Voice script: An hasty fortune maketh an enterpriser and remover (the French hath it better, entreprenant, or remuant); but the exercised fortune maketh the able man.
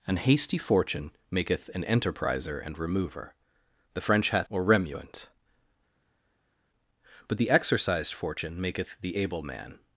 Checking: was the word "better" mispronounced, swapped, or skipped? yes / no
yes